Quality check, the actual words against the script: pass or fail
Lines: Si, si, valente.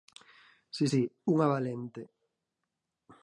fail